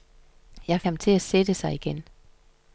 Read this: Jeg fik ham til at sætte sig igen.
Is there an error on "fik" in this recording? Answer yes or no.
yes